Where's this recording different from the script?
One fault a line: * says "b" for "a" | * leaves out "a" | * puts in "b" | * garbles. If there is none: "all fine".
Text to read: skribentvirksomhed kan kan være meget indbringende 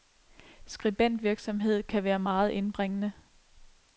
* leaves out "kan"